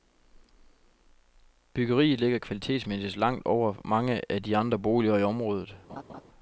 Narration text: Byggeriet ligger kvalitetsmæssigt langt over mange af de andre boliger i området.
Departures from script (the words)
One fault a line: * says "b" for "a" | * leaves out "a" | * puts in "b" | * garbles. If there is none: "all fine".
all fine